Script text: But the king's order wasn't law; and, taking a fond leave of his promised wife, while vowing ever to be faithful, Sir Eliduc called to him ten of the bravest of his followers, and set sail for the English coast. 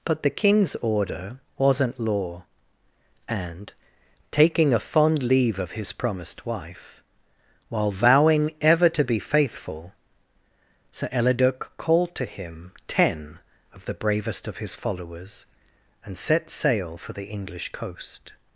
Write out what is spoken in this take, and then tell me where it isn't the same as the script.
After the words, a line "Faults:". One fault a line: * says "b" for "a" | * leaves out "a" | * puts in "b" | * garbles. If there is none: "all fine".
But the king's order wasn't law; and, taking a fond leave of his promised wife, while vowing ever to be faithful, Sir Eliduc called to him ten of the bravest of his followers, and set sail for the English coast.
Faults:
all fine